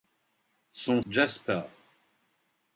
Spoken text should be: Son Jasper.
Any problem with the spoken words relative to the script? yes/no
no